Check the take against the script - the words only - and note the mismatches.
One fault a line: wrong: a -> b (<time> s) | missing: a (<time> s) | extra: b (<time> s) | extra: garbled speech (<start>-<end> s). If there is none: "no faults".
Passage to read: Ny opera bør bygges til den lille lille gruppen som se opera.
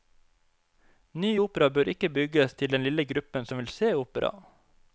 extra: ikke (1.9 s)
missing: lille (3.0 s)
extra: vil (3.6 s)